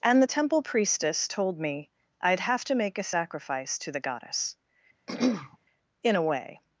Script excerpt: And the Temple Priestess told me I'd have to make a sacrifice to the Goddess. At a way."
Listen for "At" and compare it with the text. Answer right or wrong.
wrong